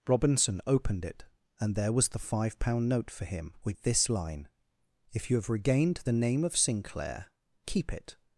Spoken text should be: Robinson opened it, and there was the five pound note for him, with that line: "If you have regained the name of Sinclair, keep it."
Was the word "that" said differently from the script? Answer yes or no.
yes